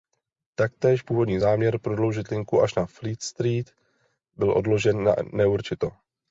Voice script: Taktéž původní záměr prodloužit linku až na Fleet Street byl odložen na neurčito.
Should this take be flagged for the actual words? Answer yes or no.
no